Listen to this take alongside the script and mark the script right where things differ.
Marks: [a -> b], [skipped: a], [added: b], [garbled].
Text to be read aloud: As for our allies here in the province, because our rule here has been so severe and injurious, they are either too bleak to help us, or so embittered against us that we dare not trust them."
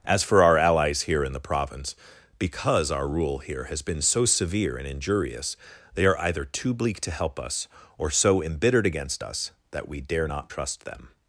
As for our allies here in the province, because our rule here has been so severe and injurious, they are either too bleak to help us, or so embittered against us that we dare not trust them."